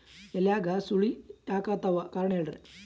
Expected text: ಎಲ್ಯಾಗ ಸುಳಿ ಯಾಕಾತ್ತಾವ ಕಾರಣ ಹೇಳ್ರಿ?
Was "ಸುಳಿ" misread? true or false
false